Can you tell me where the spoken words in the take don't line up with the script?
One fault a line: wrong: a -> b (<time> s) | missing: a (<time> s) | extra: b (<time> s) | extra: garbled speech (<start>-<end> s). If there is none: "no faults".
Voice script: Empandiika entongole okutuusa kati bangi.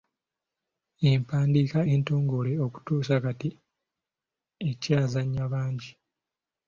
extra: ekyazannya (4.7 s)